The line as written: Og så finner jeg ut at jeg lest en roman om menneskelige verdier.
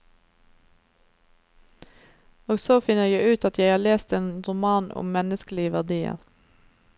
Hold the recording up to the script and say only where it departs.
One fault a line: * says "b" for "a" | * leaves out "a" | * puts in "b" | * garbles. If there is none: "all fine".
* puts in "har"